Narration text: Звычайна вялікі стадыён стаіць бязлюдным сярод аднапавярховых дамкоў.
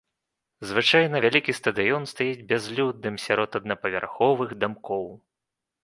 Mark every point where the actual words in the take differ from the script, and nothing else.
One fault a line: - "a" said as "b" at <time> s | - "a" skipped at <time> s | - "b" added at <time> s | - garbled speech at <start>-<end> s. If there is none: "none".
none